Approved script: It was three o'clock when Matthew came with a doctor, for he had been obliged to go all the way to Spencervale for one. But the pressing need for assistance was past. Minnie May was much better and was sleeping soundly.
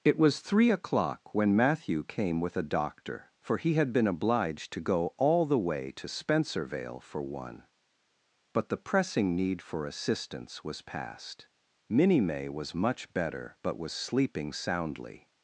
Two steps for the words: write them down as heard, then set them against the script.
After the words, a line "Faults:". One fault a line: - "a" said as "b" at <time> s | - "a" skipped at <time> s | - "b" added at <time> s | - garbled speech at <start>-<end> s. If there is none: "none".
It was three o'clock when Matthew came with a doctor, for he had been obliged to go all the way to Spencervale for one. But the pressing need for assistance was past. Minnie May was much better but was sleeping soundly.
Faults:
- "and" said as "but" at 13.6 s